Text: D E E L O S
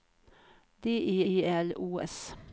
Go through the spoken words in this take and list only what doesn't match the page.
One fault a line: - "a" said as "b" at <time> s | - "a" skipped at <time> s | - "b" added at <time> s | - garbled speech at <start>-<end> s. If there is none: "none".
none